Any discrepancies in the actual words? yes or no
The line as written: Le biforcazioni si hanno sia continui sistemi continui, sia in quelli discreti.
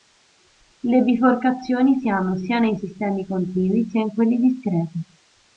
yes